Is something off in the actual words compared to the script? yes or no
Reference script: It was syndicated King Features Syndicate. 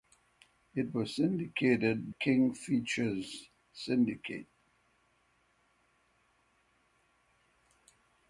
no